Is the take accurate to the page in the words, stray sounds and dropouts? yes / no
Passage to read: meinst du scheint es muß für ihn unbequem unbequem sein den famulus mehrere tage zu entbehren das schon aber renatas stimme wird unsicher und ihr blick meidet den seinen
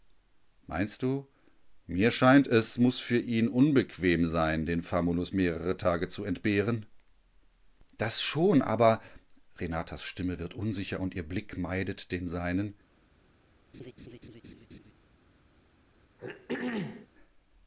no